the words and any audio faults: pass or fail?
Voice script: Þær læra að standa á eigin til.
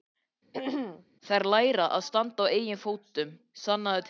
fail